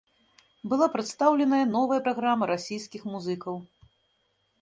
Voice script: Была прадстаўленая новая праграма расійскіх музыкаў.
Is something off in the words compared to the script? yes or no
no